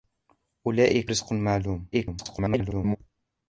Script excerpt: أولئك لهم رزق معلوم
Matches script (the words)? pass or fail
fail